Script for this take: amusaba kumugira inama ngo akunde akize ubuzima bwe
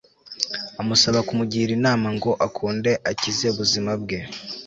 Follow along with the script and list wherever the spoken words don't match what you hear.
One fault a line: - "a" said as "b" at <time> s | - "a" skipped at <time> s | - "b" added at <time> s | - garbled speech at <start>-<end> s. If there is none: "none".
none